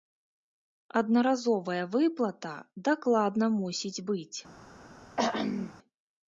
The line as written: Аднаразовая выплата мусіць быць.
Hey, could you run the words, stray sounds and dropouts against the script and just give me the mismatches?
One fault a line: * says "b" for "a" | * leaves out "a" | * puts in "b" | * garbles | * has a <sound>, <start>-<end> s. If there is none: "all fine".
* puts in "дакладна"
* has a throat clearing, 5.2-5.7 s